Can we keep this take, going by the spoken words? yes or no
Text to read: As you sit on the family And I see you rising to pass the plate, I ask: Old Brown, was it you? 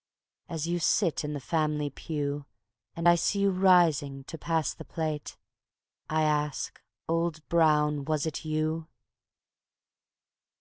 no